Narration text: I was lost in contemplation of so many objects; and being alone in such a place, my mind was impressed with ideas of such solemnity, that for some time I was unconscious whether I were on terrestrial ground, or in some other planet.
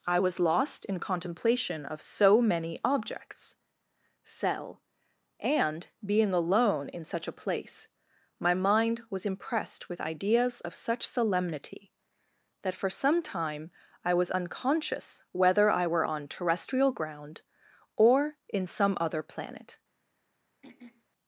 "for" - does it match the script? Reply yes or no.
yes